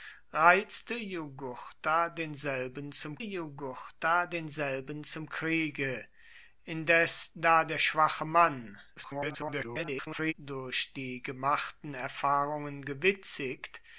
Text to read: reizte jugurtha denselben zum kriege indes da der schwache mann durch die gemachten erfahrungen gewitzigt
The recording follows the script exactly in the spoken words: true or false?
false